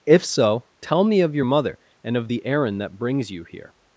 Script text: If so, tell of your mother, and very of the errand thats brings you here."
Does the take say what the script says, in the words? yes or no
no